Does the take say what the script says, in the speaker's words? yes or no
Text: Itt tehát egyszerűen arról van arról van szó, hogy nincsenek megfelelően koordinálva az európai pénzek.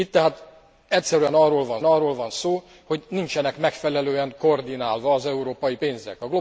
yes